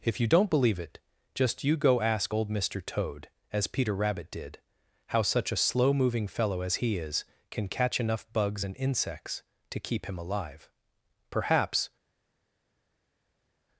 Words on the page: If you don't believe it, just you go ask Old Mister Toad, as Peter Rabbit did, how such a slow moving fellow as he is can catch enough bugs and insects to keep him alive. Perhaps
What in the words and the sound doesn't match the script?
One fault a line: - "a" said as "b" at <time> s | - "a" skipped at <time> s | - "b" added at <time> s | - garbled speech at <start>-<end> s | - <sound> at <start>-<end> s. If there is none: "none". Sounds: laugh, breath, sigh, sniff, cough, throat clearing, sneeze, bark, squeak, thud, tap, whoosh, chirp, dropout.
none